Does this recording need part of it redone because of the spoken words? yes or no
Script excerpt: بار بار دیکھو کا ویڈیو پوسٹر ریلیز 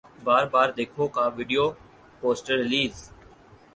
no